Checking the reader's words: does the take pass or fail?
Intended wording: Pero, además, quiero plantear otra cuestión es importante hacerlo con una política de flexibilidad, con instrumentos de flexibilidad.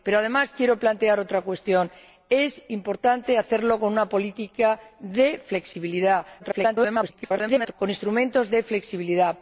fail